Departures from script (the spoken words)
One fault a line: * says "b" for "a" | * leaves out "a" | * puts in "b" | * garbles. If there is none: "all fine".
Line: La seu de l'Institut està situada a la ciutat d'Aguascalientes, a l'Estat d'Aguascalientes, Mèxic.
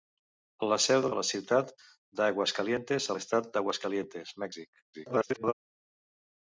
* leaves out "l'Institut està situada"
* garbles